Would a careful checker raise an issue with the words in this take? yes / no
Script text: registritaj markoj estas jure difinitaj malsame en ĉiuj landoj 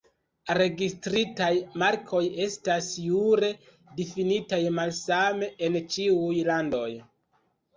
no